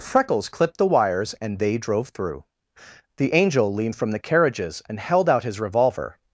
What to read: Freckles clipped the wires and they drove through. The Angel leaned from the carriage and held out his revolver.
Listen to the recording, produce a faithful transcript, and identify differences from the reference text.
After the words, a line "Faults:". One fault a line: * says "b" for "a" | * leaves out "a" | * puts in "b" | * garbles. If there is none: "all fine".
Freckles clipped the wires and they drove through. The Angel leaned from the carriages and held out his revolver.
Faults:
* says "carriages" for "carriage"